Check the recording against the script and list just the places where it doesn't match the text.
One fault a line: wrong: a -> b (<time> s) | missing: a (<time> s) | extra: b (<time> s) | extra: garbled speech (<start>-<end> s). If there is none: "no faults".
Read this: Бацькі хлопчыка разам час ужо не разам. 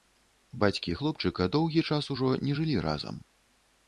wrong: разам -> доўгі (1.6 s)
extra: жылі (2.6 s)